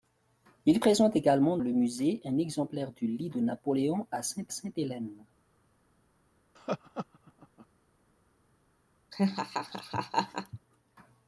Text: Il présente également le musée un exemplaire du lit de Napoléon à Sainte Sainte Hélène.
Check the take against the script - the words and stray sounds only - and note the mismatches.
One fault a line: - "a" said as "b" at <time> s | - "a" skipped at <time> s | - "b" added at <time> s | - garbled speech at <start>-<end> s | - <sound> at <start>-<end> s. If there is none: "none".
- laugh at 6.6-7.7 s
- laugh at 9.1-10.6 s